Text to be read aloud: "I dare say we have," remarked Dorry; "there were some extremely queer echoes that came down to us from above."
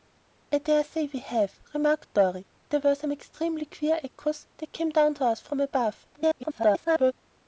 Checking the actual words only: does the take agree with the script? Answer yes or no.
no